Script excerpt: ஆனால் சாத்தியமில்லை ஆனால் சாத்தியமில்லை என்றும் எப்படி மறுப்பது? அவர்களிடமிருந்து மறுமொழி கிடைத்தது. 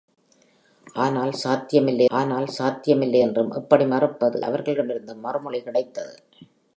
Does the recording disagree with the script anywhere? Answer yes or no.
no